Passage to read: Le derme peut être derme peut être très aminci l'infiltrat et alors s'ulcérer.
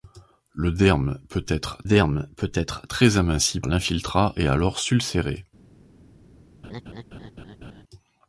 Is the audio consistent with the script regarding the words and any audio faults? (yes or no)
no